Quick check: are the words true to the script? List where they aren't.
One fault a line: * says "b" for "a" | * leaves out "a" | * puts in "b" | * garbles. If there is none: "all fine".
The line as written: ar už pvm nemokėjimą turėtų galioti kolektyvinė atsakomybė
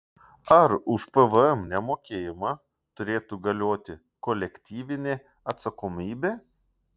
all fine